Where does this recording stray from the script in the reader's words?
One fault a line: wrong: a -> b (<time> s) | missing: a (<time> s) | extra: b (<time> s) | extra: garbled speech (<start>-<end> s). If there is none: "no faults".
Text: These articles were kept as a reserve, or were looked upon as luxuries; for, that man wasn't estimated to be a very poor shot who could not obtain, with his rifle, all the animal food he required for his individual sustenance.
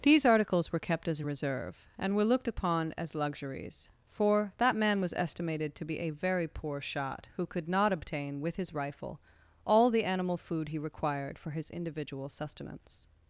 wrong: or -> and (2.0 s)
wrong: wasn't -> was (5.0 s)